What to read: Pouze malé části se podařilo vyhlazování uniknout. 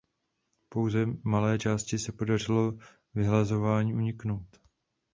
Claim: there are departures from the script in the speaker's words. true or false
false